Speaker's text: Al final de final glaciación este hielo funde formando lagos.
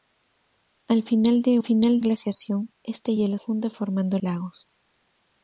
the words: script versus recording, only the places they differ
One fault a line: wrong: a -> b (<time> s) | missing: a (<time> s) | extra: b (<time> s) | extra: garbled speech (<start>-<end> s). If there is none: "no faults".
no faults